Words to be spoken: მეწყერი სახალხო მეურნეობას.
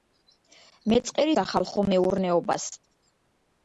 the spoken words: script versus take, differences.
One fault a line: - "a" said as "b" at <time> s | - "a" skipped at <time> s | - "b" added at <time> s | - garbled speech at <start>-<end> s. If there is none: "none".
none